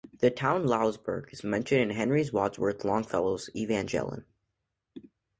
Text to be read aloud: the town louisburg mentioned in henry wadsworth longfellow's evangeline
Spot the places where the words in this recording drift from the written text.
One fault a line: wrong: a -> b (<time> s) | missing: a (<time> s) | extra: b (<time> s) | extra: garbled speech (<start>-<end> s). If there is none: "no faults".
extra: is (1.3 s)